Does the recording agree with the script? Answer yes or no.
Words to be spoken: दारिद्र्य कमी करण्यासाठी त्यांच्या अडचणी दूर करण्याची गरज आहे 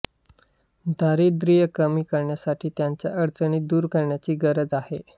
yes